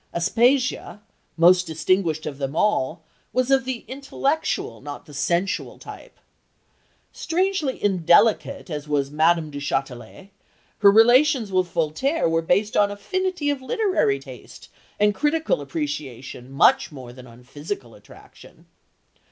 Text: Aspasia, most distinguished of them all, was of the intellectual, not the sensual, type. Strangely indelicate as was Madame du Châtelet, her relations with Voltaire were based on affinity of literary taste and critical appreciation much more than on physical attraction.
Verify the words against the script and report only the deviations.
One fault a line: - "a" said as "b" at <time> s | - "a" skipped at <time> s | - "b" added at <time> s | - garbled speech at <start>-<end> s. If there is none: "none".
none